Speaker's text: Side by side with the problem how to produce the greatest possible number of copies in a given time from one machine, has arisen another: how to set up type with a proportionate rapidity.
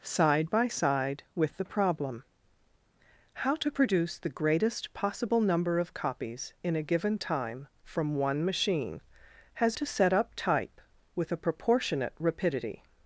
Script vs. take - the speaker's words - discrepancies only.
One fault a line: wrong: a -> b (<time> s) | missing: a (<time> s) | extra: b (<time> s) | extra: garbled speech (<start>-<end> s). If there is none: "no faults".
missing: arisen another how (9.8 s)